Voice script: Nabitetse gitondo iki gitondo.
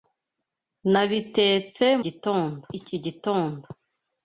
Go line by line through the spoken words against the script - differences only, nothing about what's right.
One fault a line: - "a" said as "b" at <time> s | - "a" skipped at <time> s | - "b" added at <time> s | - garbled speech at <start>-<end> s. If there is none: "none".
none